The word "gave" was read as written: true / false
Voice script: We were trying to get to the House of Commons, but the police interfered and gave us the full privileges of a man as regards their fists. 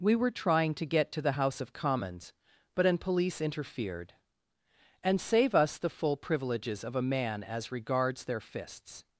false